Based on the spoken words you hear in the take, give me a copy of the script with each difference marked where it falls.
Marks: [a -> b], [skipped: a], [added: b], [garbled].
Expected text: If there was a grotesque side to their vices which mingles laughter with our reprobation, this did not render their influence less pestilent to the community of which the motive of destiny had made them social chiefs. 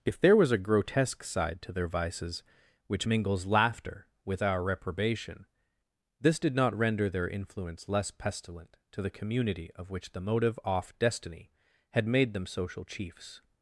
If there was a grotesque side to their vices which mingles laughter with our reprobation, this did not render their influence less pestilent to the community of which the motive [of -> off] destiny had made them social chiefs.